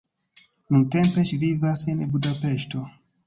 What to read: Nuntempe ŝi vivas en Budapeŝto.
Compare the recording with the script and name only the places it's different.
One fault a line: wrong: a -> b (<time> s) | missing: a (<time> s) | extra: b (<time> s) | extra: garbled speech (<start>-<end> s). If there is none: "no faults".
no faults